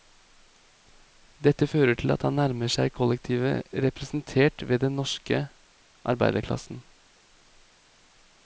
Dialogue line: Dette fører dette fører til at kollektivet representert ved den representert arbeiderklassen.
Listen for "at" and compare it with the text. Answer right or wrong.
wrong